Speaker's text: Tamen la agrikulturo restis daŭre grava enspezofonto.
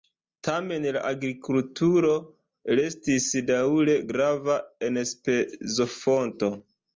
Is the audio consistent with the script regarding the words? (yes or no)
yes